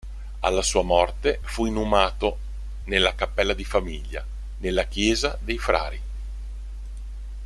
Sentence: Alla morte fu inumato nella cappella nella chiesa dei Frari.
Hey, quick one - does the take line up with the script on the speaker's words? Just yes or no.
no